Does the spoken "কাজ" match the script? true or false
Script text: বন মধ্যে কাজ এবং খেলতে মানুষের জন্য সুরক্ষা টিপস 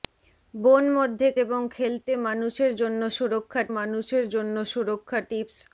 false